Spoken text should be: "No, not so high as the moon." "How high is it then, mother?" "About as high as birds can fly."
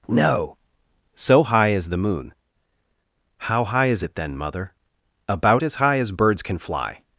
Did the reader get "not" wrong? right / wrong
wrong